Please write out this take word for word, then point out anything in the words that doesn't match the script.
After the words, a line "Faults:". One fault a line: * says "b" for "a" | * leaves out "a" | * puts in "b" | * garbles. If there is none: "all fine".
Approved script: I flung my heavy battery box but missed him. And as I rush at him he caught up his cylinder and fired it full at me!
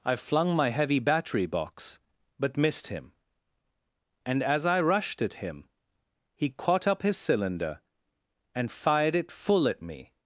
I flung my heavy battery box but missed him. And as I rushed at him he caught up his cylinder and fired it full at me!
Faults:
* says "rushed" for "rush"